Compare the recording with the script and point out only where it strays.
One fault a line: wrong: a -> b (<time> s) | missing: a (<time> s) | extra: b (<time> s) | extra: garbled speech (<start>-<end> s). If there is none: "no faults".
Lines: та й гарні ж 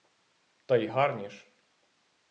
no faults